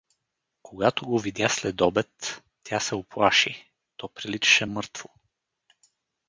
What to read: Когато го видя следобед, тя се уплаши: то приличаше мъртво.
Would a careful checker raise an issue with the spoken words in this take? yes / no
no